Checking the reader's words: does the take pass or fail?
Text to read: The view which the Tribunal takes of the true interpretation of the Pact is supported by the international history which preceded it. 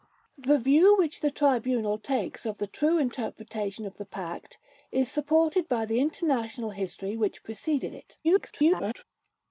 fail